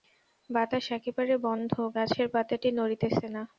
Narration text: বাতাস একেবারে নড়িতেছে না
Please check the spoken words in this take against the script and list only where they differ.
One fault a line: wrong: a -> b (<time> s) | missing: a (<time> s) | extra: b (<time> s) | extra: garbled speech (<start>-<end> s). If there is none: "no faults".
extra: বন্ধ গাছের পাতাটি (1.4 s)